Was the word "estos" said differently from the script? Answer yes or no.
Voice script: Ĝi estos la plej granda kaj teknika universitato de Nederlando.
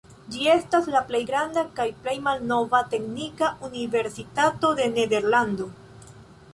yes